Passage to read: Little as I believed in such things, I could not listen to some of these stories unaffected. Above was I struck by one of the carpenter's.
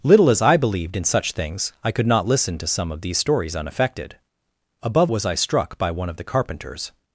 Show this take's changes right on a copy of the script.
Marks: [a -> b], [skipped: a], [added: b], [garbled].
Little as I believed in such things, I could not listen to some of these stories unaffected. Above was I struck by one of the carpenter's.